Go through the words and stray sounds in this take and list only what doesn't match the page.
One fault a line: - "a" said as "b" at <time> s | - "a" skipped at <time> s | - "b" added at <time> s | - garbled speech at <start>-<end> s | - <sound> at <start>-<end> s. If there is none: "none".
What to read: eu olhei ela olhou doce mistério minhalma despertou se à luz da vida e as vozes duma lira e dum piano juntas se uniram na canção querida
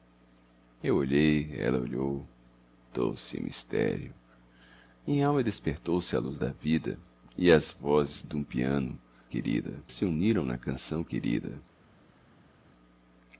- "duma lira" skipped at 8.2 s
- "juntas" said as "querida" at 9.3 s